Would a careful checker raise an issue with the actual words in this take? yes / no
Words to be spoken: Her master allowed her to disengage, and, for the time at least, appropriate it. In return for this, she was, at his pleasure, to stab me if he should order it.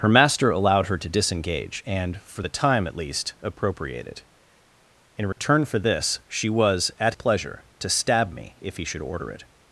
yes